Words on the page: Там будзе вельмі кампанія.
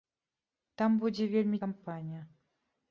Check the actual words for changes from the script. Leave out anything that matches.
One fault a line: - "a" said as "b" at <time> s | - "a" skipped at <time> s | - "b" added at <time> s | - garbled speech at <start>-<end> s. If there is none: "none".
none